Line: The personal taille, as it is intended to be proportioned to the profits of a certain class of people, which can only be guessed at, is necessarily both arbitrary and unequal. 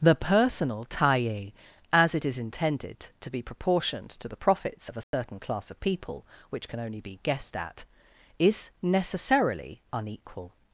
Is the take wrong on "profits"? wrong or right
right